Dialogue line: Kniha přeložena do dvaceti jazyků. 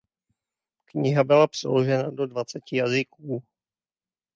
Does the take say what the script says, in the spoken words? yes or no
no